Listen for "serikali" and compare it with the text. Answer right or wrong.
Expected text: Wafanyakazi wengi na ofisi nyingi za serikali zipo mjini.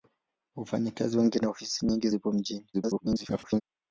wrong